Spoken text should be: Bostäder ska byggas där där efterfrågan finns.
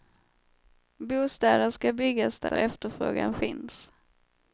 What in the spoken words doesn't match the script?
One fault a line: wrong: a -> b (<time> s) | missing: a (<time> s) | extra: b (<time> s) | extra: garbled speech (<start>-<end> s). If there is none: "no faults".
no faults